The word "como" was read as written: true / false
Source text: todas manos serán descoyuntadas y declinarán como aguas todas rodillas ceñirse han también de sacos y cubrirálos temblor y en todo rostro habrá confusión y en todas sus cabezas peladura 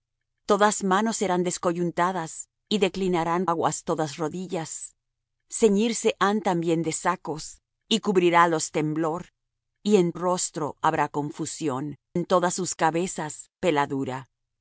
false